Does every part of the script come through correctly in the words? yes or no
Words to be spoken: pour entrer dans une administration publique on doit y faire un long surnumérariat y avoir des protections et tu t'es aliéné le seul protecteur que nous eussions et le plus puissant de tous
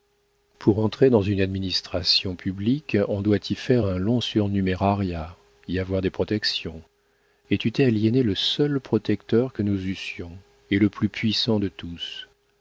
yes